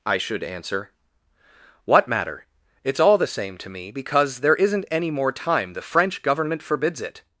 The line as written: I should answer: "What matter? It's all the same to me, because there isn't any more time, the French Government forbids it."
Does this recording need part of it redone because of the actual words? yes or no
no